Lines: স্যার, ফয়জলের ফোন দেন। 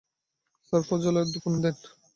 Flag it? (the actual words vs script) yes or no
no